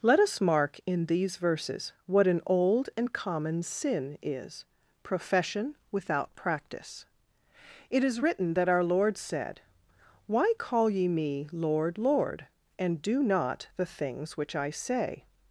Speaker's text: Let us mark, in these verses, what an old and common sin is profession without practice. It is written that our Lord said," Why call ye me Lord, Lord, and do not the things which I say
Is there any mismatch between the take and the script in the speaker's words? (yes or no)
no